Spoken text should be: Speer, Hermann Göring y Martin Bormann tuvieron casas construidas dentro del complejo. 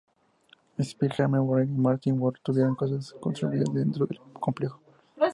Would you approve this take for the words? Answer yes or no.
yes